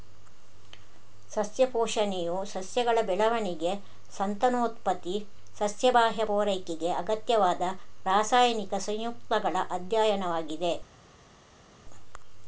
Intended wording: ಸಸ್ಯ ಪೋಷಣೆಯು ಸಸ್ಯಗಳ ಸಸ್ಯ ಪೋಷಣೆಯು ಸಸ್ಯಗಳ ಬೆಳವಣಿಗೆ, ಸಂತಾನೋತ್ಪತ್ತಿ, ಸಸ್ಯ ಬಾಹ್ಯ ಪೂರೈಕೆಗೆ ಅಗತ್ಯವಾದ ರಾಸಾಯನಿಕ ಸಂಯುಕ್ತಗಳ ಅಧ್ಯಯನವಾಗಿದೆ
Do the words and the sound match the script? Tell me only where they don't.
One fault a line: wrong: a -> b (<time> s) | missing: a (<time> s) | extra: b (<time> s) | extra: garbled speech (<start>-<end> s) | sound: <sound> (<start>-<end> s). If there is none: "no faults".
missing: ಸಸ್ಯ ಪೋಷಣೆಯು ಸಸ್ಯಗಳ (3.0 s)